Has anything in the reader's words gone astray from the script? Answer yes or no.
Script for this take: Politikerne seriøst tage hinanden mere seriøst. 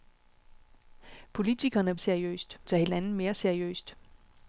no